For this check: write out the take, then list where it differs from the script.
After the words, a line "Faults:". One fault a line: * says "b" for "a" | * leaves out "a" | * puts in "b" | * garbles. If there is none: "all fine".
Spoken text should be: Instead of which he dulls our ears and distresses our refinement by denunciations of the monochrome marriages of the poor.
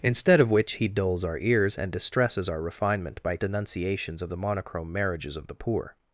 Instead of which he dulls our ears and distresses our refinement by denunciations of the monochrome marriages of the poor.
Faults:
all fine